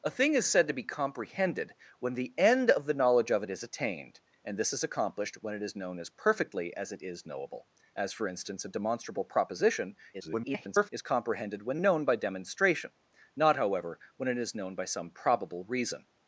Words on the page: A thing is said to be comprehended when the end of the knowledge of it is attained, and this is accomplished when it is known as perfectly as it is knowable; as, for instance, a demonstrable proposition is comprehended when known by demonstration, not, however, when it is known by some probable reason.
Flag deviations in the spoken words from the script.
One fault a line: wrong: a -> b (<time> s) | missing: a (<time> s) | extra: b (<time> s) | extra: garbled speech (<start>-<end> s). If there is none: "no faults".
extra: garbled speech (10.1-10.9 s)